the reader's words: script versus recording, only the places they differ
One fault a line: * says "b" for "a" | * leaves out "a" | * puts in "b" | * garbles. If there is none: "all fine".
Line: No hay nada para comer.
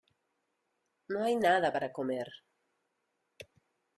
all fine